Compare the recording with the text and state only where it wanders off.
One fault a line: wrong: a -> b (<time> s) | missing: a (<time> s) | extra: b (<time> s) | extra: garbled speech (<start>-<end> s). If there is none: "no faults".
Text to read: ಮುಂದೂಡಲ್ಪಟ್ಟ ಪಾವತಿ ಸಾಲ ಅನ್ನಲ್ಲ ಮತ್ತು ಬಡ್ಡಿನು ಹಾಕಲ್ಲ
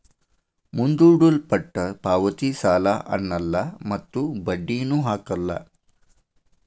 no faults